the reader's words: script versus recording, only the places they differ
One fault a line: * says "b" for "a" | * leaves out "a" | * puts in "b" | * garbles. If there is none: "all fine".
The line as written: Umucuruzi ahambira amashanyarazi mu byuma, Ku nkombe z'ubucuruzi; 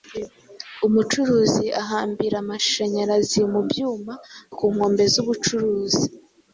all fine